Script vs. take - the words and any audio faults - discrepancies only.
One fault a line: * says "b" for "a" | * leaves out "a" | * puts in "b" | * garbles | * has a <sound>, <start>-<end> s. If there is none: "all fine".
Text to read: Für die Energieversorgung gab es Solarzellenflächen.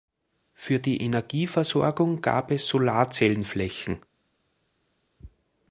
all fine